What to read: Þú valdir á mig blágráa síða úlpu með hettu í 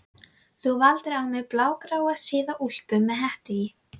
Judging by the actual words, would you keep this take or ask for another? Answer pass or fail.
pass